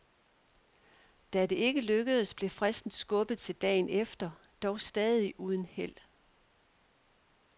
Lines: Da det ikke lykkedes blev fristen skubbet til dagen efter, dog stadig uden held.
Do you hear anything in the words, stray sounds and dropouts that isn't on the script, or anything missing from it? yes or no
no